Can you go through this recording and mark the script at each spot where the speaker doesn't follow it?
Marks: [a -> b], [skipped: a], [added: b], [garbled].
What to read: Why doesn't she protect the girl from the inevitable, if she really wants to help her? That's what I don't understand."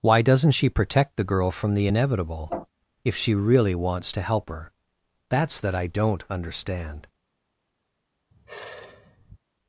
Why doesn't she protect the girl from the inevitable, if she really wants to help her? That's [what -> that] I don't understand."